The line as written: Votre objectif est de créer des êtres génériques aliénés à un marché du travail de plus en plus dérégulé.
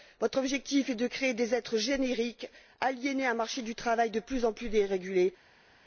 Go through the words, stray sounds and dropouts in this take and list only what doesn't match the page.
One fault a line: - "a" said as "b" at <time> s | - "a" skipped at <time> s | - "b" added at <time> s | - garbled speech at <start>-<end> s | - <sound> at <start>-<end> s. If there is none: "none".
none